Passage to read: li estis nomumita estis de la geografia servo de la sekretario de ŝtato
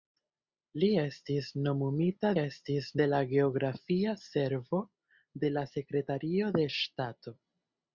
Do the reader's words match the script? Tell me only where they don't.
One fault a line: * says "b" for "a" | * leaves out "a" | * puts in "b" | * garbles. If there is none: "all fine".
all fine